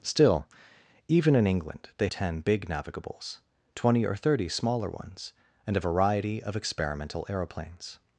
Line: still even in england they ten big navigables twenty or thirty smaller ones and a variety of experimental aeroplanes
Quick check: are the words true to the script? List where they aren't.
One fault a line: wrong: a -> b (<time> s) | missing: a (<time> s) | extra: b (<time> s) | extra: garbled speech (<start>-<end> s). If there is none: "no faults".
no faults